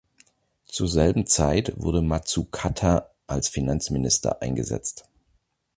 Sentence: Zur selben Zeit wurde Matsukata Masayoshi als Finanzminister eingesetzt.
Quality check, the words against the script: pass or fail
fail